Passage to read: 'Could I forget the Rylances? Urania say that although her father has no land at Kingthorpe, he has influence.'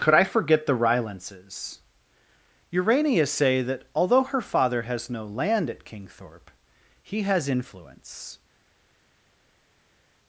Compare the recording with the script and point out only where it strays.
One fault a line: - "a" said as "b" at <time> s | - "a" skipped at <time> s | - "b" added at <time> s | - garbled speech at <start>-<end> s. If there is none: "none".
none